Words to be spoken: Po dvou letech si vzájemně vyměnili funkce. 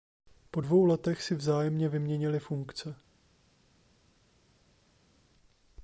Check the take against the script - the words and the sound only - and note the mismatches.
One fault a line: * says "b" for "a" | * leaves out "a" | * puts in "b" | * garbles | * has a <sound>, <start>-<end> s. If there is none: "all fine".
all fine